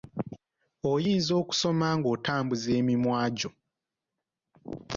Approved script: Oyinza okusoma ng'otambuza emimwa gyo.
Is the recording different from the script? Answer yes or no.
no